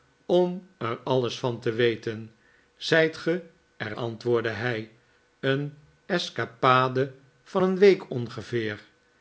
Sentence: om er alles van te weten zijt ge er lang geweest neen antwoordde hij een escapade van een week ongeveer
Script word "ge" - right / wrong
right